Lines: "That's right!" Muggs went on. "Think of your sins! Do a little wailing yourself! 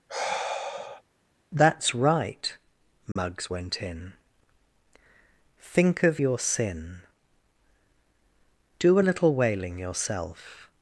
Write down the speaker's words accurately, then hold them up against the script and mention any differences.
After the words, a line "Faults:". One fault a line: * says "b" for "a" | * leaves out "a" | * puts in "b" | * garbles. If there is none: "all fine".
"That's right!" Muggs went in. "Think of your sin! Do a little wailing yourself!
Faults:
* says "in" for "on"
* says "sin" for "sins"